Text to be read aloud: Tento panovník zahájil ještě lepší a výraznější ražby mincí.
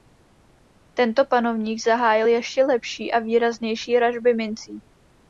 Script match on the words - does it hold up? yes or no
yes